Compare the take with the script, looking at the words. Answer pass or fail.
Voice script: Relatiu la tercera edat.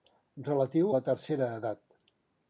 pass